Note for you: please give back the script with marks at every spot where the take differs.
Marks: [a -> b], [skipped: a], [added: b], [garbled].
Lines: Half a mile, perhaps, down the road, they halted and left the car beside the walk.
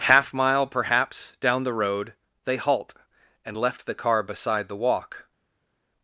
Half [skipped: a] mile, perhaps, down the road, they [halted -> halt] and left the car beside the walk.